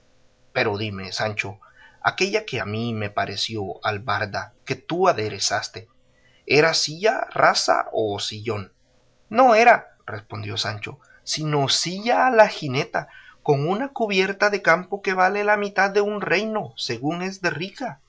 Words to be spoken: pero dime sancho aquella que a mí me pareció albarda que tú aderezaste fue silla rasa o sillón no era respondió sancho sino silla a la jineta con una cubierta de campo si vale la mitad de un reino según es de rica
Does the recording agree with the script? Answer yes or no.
no